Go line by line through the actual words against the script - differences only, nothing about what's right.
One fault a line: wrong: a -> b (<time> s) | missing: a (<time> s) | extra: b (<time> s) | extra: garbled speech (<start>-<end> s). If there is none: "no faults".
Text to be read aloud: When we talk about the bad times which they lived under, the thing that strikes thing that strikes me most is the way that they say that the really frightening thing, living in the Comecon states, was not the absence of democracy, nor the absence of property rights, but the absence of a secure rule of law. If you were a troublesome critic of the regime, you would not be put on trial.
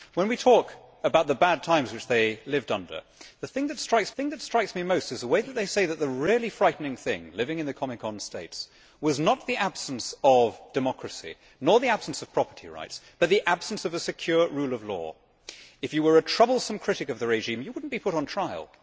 no faults